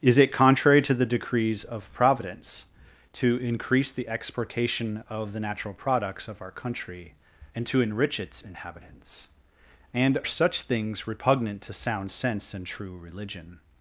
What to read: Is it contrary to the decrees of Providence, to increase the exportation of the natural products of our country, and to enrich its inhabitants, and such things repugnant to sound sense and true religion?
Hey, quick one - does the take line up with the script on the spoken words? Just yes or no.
yes